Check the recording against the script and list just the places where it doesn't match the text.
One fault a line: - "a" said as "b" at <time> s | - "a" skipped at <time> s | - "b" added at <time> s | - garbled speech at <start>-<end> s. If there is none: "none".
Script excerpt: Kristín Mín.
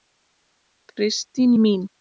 none